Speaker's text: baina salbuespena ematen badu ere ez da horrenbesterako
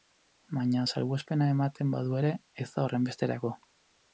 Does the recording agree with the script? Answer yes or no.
yes